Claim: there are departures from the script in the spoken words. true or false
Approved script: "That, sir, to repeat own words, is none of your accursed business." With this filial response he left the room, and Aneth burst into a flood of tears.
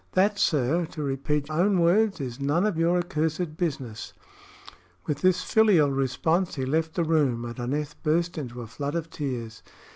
false